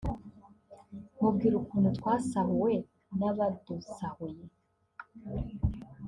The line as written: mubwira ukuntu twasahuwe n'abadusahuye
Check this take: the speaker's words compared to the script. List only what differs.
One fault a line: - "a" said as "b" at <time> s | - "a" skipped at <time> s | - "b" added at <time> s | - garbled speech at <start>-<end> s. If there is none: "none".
none